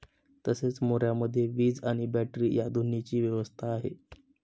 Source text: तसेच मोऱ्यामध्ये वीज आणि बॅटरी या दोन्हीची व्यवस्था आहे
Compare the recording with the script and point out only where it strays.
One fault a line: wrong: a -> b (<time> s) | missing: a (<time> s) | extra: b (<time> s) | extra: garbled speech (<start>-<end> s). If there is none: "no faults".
no faults